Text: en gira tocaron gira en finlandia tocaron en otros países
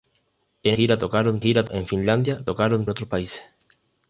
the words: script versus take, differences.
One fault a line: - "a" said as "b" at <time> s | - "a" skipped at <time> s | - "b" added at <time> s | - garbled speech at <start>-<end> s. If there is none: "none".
none